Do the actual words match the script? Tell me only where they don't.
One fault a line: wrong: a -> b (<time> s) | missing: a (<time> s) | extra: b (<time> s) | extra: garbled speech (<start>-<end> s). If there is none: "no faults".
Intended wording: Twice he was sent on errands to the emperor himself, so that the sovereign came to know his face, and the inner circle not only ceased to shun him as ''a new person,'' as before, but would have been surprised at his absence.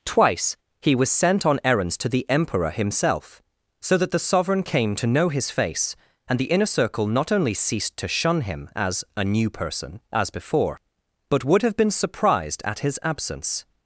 no faults